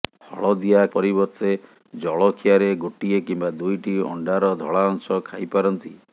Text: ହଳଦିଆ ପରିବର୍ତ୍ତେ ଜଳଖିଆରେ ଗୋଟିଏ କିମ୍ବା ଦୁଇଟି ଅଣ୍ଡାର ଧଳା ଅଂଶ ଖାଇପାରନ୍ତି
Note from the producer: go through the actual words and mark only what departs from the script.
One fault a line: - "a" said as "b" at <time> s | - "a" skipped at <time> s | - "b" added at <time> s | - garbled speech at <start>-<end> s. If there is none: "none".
none